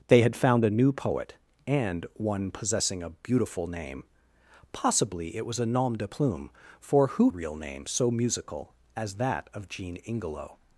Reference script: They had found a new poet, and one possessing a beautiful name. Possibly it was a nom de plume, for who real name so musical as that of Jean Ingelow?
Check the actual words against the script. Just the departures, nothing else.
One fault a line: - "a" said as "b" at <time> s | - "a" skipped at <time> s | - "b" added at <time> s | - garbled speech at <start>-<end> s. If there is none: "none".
none